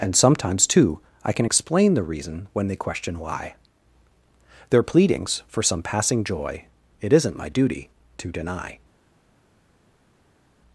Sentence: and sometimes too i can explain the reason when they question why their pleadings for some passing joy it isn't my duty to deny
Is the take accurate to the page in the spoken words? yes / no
yes